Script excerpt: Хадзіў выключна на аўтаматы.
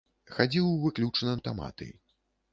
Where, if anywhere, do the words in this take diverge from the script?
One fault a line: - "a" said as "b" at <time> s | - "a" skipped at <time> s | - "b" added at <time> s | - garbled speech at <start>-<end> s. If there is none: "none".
- "на" skipped at 1.4 s